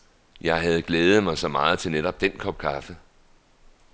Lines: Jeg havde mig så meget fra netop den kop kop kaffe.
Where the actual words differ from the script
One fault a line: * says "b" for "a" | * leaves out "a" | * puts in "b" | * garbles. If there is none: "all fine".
* puts in "glædet"
* says "til" for "fra"
* leaves out "kop"